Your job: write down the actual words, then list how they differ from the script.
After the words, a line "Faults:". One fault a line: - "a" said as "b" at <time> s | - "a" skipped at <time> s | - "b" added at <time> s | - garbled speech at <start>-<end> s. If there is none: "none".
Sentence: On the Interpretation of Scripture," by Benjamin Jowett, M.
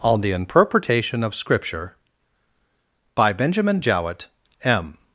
On the Interpretation of Scripture," by Benjamin Jowett, M.
Faults:
none